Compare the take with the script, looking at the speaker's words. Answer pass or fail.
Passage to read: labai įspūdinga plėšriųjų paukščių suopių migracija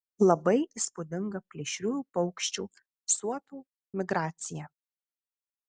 pass